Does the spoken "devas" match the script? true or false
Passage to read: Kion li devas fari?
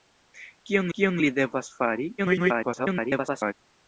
true